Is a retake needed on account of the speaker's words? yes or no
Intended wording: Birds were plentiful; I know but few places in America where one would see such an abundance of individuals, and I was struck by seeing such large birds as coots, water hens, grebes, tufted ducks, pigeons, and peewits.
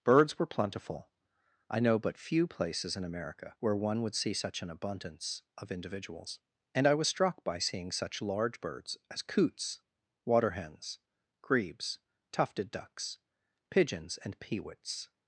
no